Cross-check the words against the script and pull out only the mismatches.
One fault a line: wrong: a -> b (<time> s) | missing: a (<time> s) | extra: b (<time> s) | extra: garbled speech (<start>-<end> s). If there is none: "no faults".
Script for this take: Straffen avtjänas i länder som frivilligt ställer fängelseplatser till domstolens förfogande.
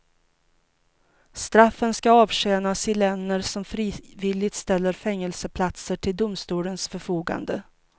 extra: ska (1.9 s)